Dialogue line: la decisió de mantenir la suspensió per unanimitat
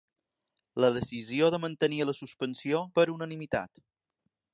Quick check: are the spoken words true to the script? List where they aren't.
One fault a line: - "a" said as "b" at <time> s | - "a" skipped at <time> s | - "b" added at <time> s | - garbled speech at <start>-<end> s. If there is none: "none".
none